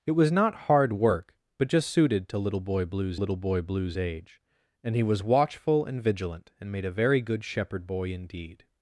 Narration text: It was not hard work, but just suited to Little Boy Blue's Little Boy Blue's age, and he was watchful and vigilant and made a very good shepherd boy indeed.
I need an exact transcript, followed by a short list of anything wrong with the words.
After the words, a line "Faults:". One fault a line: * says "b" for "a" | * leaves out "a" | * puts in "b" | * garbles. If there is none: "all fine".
It was not hard work, but just suited to Little Boy Blue's Little Boy Blue's age, and he was watchful and vigilant and made a very good shepherd boy indeed.
Faults:
all fine